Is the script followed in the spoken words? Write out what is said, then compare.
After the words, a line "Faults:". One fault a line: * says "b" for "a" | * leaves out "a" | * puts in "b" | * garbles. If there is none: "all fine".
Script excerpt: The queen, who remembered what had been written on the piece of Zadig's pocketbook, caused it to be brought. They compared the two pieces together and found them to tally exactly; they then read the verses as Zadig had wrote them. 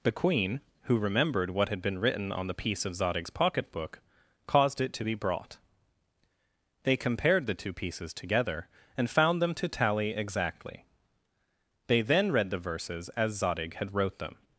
The queen, who remembered what had been written on the piece of Zadig's pocketbook, caused it to be brought. They compared the two pieces together and found them to tally exactly; they then read the verses as Zadig had wrote them.
Faults:
all fine